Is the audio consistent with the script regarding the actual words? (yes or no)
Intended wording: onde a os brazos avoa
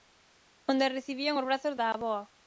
no